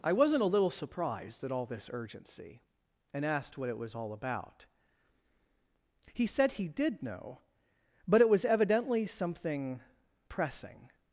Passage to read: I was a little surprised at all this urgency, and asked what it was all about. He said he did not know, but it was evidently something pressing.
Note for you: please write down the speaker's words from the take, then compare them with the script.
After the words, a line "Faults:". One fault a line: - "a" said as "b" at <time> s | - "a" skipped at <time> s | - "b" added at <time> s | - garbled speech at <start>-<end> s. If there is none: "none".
I wasn't a little surprised at all this urgency, and asked what it was all about. He said he did know, but it was evidently something pressing.
Faults:
- "was" said as "wasn't" at 0.1 s
- "not" skipped at 7.0 s